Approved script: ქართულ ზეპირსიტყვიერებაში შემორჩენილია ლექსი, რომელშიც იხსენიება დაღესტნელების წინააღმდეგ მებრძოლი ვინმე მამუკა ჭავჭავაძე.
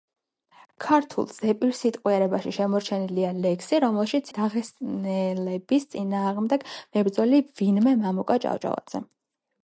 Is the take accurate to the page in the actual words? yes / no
no